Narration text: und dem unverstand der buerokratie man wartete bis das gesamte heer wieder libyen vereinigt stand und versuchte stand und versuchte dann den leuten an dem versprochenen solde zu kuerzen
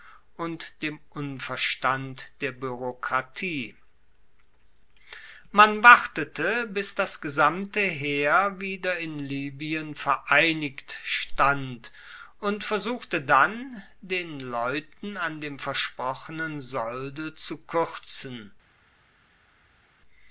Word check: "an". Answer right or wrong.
right